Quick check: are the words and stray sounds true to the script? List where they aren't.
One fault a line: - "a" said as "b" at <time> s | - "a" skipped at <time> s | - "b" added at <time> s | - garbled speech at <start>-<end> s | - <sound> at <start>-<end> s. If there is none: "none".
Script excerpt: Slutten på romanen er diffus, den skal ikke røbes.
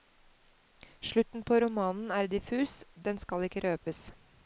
none